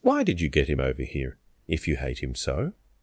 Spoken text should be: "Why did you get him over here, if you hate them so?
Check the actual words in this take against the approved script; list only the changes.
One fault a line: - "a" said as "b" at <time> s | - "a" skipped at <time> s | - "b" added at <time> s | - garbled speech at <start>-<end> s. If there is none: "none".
- "them" said as "him" at 2.2 s